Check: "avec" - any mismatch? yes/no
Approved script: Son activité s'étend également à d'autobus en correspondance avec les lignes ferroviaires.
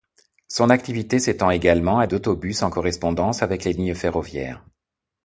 no